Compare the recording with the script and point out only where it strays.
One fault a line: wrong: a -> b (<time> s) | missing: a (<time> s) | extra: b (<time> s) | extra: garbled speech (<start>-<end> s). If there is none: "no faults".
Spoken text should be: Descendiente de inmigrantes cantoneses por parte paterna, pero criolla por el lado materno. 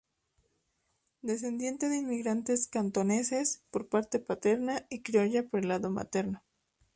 wrong: pero -> y (4.9 s)